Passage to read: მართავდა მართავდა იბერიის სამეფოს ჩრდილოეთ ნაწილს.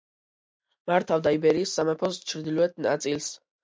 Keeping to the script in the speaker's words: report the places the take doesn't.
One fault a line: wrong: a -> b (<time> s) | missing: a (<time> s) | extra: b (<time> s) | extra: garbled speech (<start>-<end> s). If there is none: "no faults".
missing: მართავდა (1.4 s)